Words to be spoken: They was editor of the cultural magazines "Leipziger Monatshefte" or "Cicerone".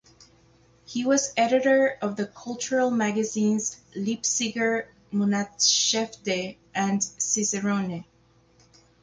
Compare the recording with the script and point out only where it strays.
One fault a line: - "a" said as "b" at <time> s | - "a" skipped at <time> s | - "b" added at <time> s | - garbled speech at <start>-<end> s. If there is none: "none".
- "They" said as "He" at 0.8 s
- "or" said as "and" at 6.7 s